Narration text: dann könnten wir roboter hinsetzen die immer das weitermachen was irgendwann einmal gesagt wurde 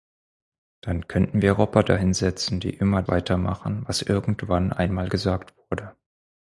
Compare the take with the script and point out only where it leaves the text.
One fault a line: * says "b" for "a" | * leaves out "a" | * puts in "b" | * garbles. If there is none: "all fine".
* leaves out "das"